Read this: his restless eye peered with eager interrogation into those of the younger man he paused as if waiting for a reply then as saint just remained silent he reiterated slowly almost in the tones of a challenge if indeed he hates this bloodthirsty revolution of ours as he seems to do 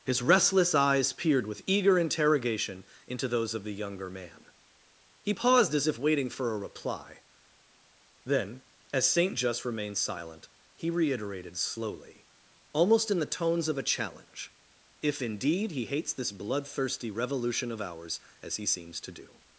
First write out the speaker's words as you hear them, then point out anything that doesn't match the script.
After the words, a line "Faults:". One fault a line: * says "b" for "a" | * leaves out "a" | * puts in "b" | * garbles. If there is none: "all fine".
his restless eyes peered with eager interrogation into those of the younger man he paused as if waiting for a reply then as saint just remained silent he reiterated slowly almost in the tones of a challenge if indeed he hates this bloodthirsty revolution of ours as he seems to do
Faults:
* says "eyes" for "eye"